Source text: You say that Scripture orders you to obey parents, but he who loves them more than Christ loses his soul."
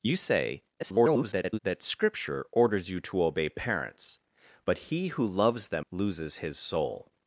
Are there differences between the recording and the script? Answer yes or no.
yes